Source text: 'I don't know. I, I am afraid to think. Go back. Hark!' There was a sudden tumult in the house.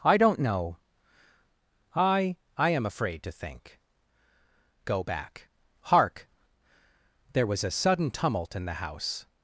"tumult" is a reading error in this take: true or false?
false